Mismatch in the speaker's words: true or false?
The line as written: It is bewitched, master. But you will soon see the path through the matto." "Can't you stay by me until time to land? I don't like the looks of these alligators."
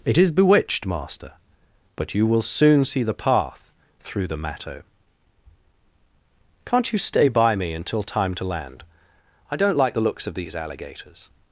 false